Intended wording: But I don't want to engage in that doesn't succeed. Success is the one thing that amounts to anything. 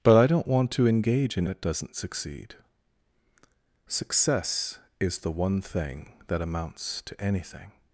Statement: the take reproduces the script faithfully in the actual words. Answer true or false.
true